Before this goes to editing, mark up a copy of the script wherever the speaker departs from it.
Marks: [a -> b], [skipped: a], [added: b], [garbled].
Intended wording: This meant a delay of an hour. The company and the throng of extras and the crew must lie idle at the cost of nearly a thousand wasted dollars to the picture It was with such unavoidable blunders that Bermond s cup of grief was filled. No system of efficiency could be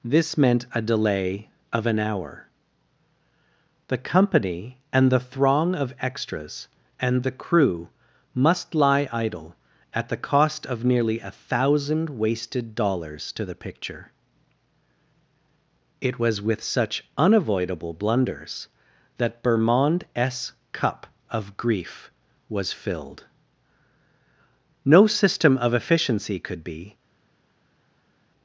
This meant a delay of an hour. The company and the throng of extras and the crew must lie idle at the cost of nearly a thousand wasted dollars to the picture It was with such unavoidable blunders that Bermond s cup of grief was filled. No system of efficiency could be